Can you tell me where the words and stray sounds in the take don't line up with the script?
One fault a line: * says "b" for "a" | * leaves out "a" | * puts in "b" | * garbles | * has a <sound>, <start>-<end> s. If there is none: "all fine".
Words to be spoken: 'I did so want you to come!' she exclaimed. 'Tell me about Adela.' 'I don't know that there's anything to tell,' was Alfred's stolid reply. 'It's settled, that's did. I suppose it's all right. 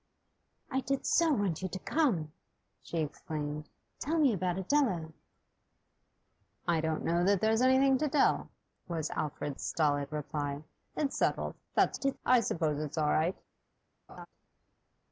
* has a laugh, 14.1-14.3 s